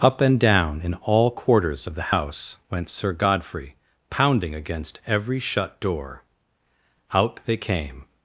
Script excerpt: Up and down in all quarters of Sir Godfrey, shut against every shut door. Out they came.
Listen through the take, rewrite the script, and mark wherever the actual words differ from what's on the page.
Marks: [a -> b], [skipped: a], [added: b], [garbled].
Up and down in all quarters of [added: the house went] Sir Godfrey, [shut -> pounding] against every shut door. Out they came.